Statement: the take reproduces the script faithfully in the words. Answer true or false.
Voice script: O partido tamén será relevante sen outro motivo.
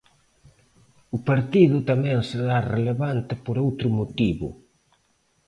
false